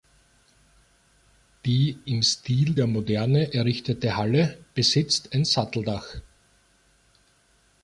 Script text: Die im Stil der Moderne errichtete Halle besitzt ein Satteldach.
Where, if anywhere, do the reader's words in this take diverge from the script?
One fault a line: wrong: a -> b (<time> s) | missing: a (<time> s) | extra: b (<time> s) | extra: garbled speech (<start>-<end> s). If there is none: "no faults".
no faults